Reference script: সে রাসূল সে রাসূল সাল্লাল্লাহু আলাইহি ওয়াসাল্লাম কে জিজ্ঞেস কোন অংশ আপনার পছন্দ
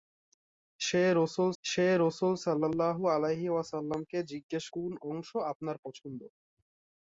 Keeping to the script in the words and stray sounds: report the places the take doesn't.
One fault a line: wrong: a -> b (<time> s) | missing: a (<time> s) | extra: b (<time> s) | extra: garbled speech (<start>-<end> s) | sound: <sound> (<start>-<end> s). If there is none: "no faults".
no faults